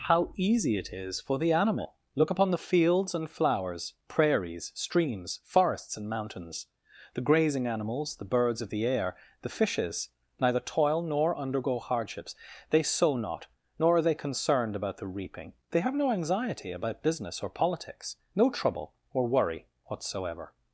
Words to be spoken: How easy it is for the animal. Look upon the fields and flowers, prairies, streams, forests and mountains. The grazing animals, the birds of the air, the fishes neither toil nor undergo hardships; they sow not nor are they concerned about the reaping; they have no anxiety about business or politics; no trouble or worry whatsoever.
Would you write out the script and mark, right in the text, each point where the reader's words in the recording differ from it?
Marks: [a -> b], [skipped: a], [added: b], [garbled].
How easy it is for the animal. Look upon the fields and flowers, prairies, streams, forests and mountains. The grazing animals, the birds of the air, the fishes neither toil nor undergo hardships; they sow not nor are they concerned about the reaping; they have no anxiety about business or politics; no trouble or worry whatsoever.